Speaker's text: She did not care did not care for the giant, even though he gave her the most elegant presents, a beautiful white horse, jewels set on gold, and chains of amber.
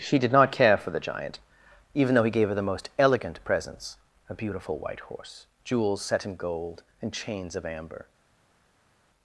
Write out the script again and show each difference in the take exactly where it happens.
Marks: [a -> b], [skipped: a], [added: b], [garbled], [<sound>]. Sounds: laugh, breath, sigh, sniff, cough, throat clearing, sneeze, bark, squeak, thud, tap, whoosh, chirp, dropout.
She did not care [skipped: did not care] for the giant, even though he gave her the most elegant presents, a beautiful white horse, jewels set [on -> in] gold, and chains of amber.